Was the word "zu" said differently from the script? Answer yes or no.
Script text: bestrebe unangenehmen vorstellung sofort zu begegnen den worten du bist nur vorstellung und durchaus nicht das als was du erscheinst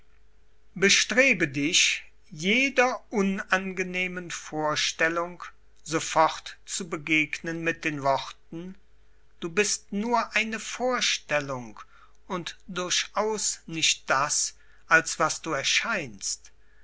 no